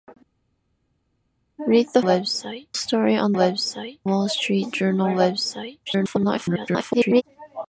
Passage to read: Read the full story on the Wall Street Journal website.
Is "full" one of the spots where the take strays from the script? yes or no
yes